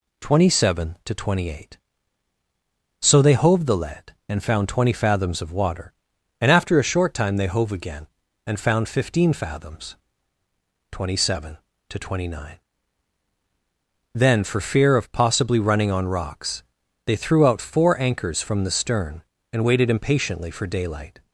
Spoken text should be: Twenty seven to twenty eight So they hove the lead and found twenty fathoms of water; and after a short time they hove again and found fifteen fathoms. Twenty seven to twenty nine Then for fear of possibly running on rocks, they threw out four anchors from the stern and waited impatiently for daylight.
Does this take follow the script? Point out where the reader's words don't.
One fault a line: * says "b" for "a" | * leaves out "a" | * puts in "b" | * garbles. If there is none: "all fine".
all fine